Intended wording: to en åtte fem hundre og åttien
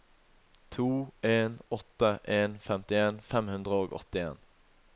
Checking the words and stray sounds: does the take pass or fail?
fail